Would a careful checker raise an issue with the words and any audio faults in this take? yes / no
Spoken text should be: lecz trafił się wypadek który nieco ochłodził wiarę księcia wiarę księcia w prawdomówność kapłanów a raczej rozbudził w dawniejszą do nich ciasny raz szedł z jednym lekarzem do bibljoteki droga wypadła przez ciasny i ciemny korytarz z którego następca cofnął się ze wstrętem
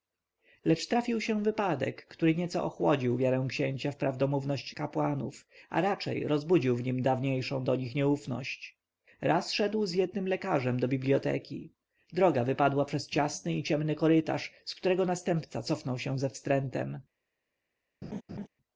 yes